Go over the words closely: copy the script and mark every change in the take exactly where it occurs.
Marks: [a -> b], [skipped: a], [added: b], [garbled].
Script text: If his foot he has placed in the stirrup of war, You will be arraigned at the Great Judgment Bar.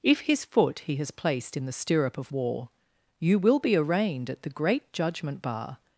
If his foot he has placed in the stirrup of war, You will be arraigned at the Great Judgment Bar.